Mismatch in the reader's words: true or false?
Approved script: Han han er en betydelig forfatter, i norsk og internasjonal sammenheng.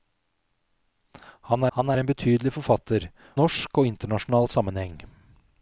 false